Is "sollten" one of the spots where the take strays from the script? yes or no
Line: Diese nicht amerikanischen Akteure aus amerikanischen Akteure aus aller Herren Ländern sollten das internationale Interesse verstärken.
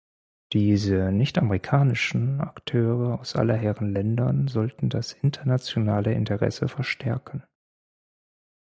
no